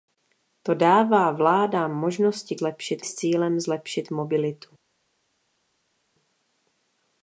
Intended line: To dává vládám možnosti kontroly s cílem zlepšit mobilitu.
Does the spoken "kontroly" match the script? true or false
false